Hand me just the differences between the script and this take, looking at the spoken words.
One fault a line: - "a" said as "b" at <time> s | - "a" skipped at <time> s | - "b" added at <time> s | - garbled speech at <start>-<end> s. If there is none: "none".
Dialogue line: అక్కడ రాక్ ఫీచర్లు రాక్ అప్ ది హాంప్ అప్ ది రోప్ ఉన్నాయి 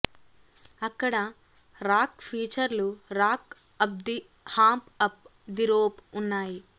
none